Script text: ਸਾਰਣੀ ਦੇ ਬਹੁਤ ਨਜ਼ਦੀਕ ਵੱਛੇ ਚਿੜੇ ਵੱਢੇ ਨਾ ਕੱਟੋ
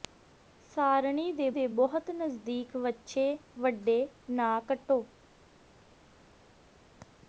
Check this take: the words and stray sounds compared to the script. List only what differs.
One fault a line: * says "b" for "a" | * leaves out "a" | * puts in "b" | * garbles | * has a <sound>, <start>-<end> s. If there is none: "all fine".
* puts in "ਦੇ"
* leaves out "ਚਿੜੇ"